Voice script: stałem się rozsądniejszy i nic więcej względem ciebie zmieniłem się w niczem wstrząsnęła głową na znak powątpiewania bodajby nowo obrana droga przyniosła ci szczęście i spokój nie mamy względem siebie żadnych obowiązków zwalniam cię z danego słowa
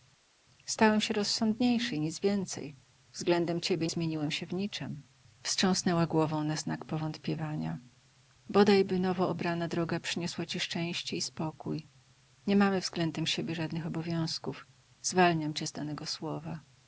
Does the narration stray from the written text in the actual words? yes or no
no